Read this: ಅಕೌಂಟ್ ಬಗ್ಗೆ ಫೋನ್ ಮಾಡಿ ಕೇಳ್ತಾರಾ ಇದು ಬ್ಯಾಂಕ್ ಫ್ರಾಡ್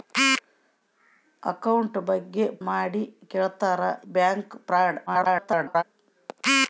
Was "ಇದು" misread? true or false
true